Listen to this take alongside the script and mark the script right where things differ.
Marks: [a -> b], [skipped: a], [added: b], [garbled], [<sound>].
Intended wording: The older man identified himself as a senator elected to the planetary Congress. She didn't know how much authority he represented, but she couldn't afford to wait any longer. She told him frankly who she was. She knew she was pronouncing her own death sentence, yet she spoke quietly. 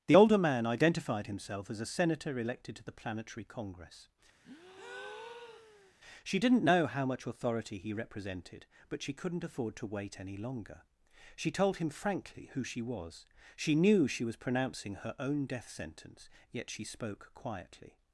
The older man identified himself as a senator elected to the planetary Congress. [breath] She didn't know how much authority he represented, but she couldn't afford to wait any longer. She told him frankly who she was. She knew she was pronouncing her own death sentence, yet she spoke quietly.